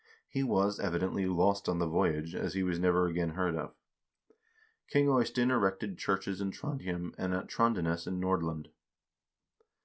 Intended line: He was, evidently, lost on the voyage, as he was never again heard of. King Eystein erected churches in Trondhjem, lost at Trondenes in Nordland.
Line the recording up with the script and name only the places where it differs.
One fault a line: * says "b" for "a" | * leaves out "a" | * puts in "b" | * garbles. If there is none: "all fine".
* says "and" for "lost"